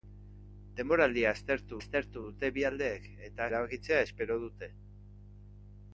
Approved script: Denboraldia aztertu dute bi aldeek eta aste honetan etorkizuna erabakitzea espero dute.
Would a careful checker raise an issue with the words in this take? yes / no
yes